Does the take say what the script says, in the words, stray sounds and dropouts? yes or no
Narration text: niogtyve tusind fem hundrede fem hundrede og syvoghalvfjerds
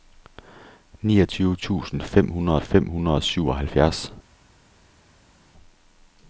yes